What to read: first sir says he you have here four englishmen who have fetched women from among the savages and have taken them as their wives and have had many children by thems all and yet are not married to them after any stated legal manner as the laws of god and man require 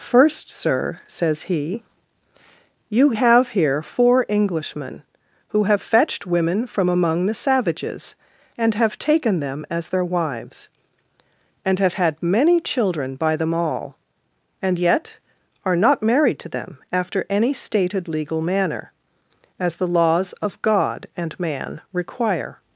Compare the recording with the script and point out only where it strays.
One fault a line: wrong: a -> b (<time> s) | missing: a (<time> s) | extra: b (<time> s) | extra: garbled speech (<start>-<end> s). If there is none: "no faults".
wrong: thems -> them (13.3 s)